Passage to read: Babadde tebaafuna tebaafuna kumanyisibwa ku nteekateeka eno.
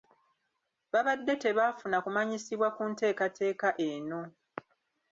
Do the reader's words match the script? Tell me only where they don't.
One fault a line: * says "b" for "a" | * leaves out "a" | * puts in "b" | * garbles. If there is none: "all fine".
* leaves out "tebaafuna"